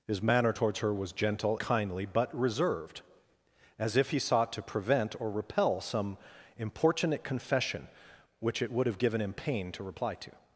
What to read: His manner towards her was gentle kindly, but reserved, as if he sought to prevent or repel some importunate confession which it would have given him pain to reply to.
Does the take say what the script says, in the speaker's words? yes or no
yes